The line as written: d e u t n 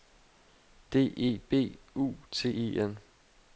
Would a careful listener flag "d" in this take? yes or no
no